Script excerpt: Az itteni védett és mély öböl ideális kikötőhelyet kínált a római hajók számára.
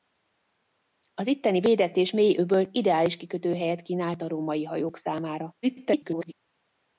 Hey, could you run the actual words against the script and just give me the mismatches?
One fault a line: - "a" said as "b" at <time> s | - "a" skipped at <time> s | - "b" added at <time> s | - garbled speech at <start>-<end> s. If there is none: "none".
- garbled speech at 5.6-6.3 s